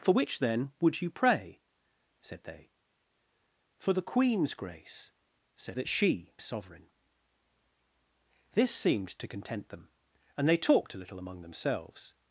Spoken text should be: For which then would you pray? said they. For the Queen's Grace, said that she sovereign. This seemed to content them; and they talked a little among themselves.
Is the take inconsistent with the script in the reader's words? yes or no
no